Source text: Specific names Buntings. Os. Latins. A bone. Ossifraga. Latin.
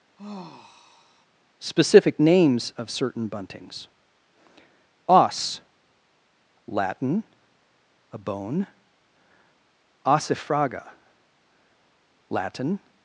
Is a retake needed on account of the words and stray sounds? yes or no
yes